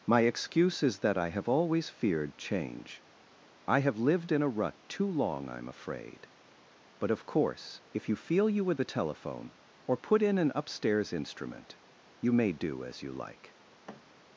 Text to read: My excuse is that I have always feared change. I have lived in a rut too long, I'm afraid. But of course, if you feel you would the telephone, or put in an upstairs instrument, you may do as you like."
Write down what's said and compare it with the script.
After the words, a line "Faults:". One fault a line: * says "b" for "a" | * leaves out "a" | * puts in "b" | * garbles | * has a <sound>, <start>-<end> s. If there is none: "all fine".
My excuse is that I have always feared change. I have lived in a rut too long, I'm afraid. But of course, if you feel you would the telephone, or put in an upstairs instrument, you may do as you like."
Faults:
* has a thud, 13.9-14.1 s